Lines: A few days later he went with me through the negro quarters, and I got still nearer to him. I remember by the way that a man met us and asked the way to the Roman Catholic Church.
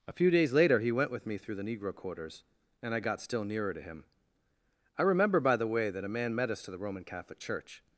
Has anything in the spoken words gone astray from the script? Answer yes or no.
yes